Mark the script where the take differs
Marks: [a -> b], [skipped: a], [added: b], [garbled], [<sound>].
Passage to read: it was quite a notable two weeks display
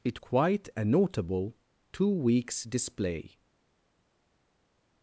it [skipped: was] quite a notable two weeks display